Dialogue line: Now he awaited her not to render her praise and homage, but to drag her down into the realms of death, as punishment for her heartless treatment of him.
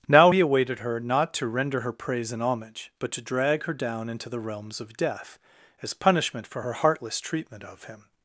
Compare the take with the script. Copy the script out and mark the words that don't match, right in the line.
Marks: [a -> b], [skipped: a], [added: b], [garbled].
Now he awaited her not to render her praise and homage, but to drag her down into the realms of death, as punishment for her heartless treatment of him.